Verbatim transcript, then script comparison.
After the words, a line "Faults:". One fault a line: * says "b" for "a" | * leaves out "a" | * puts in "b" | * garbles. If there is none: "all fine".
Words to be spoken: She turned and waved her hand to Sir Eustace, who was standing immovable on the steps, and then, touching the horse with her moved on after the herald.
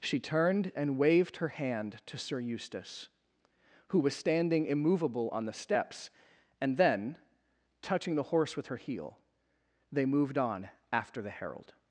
She turned and waved her hand to Sir Eustace, who was standing immovable on the steps, and then, touching the horse with her heel, they moved on after the herald.
Faults:
* puts in "heel they"